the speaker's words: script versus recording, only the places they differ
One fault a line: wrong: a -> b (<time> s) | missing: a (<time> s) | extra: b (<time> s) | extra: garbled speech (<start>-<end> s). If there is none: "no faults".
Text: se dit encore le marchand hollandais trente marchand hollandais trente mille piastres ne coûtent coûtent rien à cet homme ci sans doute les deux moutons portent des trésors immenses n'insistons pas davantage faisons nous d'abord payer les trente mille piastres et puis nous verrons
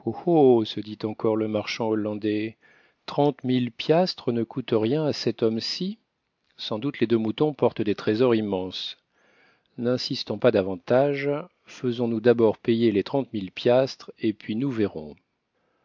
missing: marchand hollandais trente (3.4 s)
missing: coûtent (4.7 s)